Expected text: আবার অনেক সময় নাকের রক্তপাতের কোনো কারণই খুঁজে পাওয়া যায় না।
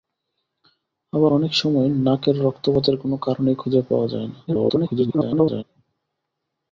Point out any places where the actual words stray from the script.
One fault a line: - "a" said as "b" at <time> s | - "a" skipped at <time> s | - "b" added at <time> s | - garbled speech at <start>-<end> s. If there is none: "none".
- garbled speech at 4.5-5.6 s